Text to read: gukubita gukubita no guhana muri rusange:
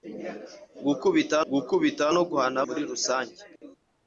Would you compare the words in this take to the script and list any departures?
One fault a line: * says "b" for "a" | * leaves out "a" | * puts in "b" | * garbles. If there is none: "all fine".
all fine